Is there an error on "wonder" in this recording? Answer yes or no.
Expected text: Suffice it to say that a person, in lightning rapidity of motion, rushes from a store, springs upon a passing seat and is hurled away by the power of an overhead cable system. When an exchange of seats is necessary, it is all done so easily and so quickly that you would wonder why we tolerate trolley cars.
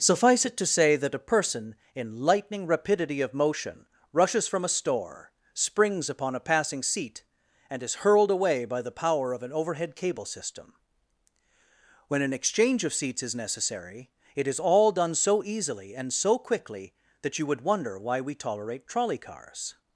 no